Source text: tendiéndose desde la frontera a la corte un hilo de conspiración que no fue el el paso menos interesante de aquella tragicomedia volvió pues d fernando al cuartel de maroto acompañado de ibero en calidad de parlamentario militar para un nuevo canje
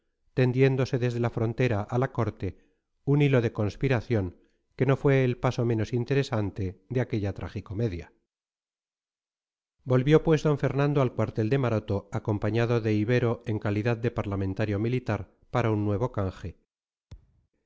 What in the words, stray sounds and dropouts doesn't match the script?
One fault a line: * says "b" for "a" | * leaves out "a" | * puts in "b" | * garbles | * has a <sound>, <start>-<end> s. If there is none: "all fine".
* leaves out "el"
* has a thud, 17.1-17.5 s